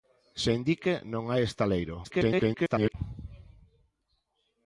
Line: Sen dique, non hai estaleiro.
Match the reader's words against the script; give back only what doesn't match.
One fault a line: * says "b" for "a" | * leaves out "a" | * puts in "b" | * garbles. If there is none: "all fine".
* garbles